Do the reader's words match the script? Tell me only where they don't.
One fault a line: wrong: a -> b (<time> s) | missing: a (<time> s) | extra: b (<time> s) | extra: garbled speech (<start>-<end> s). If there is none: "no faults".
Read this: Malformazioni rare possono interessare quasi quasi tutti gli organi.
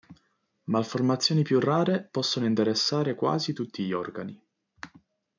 extra: più (1.4 s)
missing: quasi (3.5 s)